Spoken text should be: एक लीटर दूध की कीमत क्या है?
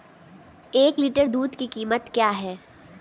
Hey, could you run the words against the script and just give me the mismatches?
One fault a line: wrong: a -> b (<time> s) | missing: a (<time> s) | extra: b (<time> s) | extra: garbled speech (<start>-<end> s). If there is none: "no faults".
no faults